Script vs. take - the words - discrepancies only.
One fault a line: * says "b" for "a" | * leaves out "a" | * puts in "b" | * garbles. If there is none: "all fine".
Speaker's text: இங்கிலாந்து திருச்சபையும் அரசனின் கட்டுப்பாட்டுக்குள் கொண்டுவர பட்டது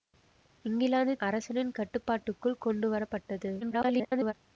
* leaves out "திருச்சபையும்"
* garbles